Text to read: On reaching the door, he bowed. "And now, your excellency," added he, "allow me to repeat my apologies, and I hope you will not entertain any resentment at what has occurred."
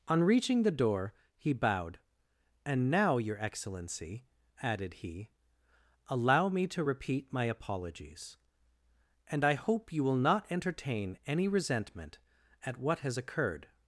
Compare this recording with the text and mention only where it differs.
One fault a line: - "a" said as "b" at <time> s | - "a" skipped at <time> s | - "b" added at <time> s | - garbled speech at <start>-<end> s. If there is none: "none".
none